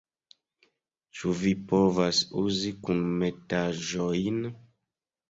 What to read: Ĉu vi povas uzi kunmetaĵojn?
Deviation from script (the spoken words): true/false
false